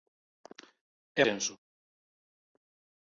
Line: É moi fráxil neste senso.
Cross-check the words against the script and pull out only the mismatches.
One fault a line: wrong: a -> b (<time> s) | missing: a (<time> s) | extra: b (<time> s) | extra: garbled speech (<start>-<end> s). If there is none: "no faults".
missing: moi fráxil neste (1.2 s)